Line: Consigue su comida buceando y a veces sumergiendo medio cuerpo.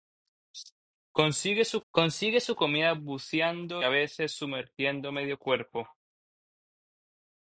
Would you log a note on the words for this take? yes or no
yes